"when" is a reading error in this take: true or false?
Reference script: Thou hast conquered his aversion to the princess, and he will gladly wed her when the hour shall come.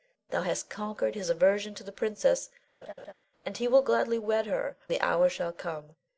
true